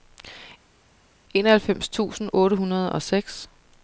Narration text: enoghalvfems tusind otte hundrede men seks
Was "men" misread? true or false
true